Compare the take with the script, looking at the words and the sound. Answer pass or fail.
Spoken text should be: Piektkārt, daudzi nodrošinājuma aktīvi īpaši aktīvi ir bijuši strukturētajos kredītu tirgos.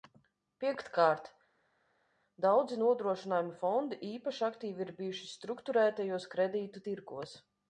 fail